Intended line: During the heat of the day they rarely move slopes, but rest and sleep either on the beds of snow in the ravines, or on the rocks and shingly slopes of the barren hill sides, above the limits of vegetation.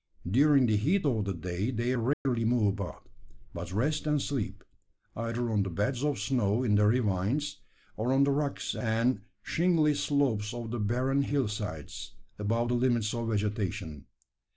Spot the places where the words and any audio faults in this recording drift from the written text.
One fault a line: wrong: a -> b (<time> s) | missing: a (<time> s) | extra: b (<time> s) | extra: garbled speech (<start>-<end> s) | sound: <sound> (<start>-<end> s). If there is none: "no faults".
sound: dropout (2.1-2.3 s)
wrong: slopes -> about (2.7 s)